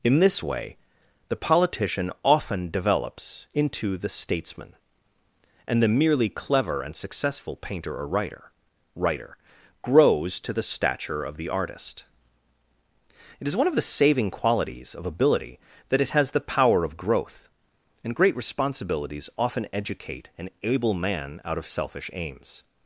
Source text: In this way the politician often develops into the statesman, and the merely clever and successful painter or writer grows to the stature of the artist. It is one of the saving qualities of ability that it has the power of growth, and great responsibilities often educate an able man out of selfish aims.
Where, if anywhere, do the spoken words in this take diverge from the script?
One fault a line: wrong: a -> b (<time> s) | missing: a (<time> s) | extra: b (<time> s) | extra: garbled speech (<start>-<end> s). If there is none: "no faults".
extra: writer (8.9 s)